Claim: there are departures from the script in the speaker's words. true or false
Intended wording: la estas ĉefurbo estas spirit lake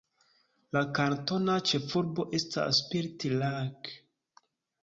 true